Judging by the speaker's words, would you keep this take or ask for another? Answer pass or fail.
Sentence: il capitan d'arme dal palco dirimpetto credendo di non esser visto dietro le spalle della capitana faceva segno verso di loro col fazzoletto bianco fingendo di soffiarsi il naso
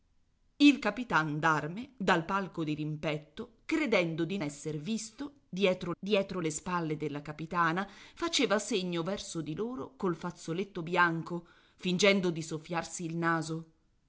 fail